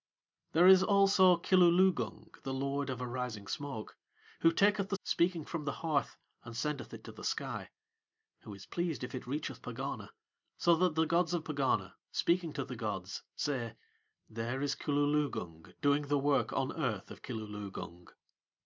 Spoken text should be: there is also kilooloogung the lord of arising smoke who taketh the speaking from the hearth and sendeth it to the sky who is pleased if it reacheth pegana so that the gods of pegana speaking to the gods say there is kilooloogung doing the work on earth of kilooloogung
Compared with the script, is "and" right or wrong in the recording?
right